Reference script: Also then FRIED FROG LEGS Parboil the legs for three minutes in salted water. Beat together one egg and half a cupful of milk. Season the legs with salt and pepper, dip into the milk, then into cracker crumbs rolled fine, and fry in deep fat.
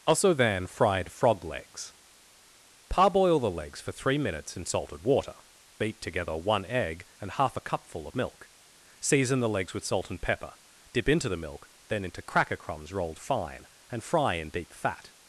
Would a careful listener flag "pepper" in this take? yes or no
no